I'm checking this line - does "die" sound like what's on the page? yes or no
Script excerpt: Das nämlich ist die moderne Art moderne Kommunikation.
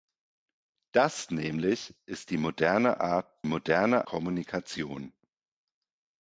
yes